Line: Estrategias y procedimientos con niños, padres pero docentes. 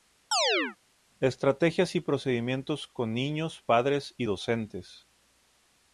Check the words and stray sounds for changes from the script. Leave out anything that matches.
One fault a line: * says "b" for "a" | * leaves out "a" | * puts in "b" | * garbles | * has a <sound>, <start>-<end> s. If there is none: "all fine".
* has a chirp, 0.3-0.8 s
* says "y" for "pero"